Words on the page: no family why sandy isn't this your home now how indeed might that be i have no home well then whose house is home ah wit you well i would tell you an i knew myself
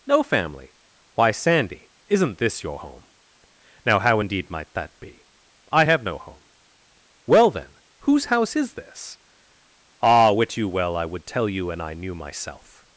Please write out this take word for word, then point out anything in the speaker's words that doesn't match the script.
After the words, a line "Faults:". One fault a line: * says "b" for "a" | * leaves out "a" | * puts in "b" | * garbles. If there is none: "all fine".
no family why sandy isn't this your home now how indeed might that be i have no home well then whose house is this ah wit you well i would tell you an i knew myself
Faults:
* says "this" for "home"